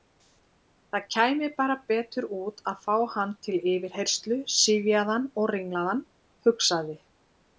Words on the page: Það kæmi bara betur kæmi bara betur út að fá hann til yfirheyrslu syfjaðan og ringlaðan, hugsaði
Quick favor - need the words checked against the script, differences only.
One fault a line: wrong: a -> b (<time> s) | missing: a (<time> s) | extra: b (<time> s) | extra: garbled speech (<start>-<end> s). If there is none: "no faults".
missing: kæmi bara betur (2.3 s)